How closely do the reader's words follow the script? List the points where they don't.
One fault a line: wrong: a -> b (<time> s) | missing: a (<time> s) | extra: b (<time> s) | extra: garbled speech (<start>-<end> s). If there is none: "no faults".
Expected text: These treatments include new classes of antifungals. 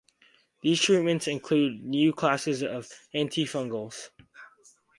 no faults